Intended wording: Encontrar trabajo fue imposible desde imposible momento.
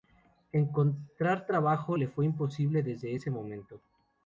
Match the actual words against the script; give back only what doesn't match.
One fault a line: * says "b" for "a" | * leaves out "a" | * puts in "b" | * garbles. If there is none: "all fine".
* puts in "le"
* says "ese" for "imposible"